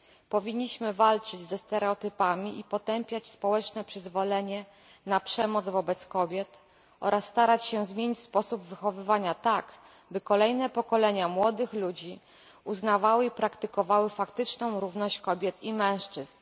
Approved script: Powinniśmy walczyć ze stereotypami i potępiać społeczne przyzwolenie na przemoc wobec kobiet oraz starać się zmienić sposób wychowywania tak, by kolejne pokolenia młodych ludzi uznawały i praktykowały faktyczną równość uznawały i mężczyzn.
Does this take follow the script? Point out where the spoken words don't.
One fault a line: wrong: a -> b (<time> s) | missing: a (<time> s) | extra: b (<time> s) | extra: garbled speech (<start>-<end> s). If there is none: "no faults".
wrong: uznawały -> kobiet (15.2 s)